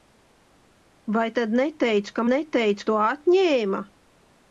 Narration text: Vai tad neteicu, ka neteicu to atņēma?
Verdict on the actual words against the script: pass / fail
pass